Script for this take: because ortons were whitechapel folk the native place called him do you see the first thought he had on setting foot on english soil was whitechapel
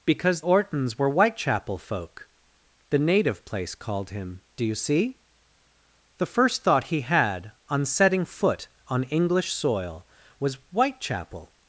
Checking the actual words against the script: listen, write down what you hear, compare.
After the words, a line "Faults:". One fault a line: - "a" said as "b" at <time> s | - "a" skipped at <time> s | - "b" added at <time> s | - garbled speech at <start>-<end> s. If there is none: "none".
because ortons were whitechapel folk the native place called him do you see the first thought he had on setting foot on english soil was whitechapel
Faults:
none